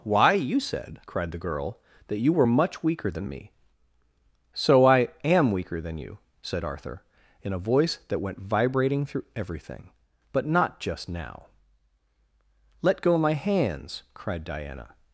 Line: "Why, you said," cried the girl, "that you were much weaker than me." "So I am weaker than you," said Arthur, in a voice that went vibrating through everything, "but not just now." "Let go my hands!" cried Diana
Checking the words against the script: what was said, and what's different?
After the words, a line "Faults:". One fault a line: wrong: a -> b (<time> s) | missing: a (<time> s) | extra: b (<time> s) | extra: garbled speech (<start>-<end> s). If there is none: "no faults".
"Why, you said," cried the girl, "that you were much weaker than me." "So I am weaker than you," said Arthur, in a voice that went vibrating through everything, "but not just now." "Let go my hands!" cried Diana
Faults:
no faults